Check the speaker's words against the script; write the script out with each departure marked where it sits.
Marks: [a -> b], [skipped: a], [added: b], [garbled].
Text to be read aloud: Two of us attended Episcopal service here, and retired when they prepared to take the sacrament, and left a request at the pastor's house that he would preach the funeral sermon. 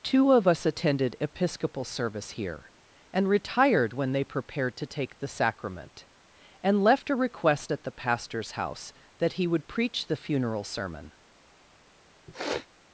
Two of us attended Episcopal service here, and retired when they prepared to take the sacrament, and left a request at the pastor's house that he would preach the funeral sermon.